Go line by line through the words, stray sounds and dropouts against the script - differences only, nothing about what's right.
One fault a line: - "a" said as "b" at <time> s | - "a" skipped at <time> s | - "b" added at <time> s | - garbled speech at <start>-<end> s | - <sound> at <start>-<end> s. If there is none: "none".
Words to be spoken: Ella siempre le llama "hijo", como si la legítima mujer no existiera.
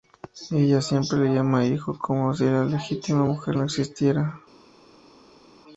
none